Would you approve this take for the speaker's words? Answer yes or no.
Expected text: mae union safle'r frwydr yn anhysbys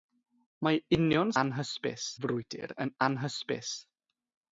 no